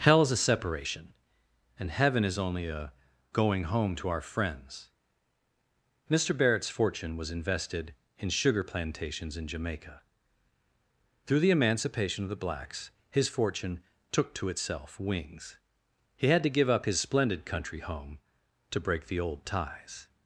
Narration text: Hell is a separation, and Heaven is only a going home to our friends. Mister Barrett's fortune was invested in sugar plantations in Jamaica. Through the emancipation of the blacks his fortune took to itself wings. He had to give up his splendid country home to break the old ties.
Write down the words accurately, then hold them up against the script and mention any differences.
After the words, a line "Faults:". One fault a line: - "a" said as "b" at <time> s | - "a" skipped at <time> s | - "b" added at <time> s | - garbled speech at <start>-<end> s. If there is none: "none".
Hell is a separation, and Heaven is only a going home to our friends. Mister Barrett's fortune was invested in sugar plantations in Jamaica. Through the emancipation of the blacks his fortune took to itself wings. He had to give up his splendid country home to break the old ties.
Faults:
none